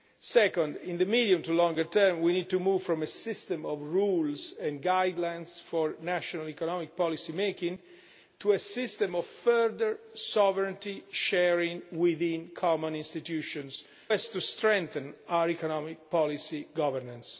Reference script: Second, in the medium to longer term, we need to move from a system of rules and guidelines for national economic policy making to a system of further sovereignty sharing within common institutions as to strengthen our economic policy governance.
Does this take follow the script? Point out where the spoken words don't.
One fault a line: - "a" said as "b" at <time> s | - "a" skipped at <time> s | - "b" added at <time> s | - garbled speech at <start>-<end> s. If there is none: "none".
none